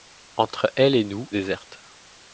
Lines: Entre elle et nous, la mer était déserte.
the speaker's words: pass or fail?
fail